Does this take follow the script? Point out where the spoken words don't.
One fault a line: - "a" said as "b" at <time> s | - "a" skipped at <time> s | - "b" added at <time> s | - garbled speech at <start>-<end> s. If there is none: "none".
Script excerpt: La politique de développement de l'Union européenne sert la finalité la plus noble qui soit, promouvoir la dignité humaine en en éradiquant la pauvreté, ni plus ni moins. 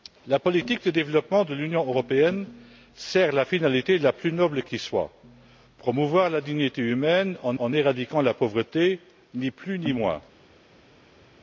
none